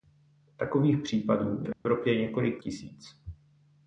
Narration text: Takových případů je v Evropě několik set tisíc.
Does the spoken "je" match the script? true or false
false